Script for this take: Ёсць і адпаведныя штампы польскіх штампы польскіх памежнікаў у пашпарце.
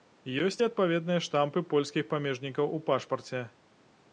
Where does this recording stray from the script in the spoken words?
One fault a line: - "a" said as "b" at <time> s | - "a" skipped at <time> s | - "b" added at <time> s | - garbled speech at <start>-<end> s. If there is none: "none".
- "штампы польскіх" skipped at 2.0 s